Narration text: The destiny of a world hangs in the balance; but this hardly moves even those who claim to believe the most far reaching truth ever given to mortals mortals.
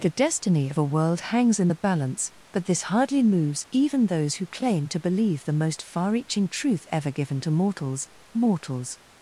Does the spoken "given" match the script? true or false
true